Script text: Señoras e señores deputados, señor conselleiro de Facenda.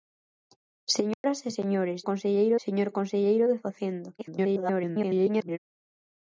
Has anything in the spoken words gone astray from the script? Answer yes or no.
yes